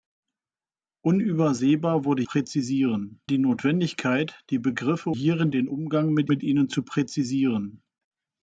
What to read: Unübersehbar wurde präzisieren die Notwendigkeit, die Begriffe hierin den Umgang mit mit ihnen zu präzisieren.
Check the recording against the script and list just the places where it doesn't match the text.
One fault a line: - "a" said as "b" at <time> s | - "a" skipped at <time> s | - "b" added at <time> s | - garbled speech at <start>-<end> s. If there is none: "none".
none